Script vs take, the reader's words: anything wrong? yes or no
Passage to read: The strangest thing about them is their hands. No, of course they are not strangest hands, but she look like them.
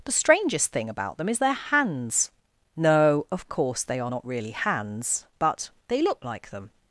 yes